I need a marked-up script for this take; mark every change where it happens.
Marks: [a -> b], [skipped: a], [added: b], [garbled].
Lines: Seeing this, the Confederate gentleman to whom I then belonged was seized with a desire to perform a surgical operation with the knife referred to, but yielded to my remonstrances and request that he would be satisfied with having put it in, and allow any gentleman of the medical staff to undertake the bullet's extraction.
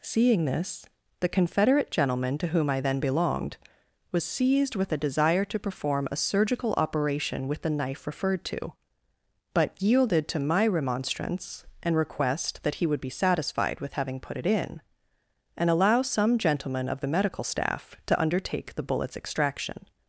Seeing this, the Confederate gentleman to whom I then belonged was seized with a desire to perform a surgical operation with the knife referred to, but yielded to my [remonstrances -> remonstrance] and request that he would be satisfied with having put it in, and allow [any -> some] gentleman of the medical staff to undertake the bullet's extraction.